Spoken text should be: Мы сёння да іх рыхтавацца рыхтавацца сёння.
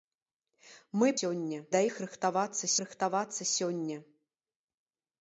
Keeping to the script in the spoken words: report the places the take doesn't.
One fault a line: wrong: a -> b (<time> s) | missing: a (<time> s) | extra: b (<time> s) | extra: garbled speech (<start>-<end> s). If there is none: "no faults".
no faults